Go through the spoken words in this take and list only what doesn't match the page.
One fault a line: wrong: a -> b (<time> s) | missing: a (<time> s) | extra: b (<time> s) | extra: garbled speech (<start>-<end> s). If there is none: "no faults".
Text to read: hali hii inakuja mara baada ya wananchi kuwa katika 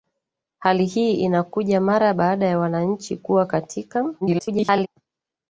extra: garbled speech (4.2-4.9 s)